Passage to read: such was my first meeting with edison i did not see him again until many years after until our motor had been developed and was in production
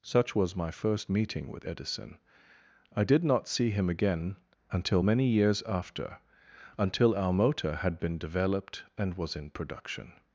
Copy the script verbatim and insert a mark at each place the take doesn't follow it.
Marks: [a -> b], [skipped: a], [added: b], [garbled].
such was my first meeting with edison i did not see him again until many years after until our motor had been developed and was in production